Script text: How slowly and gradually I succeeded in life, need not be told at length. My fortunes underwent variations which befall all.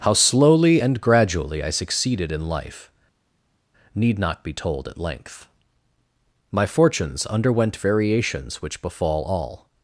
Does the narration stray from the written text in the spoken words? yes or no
no